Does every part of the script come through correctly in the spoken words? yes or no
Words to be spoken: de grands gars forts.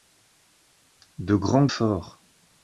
no